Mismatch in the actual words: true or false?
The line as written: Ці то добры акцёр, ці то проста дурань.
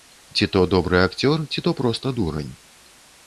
false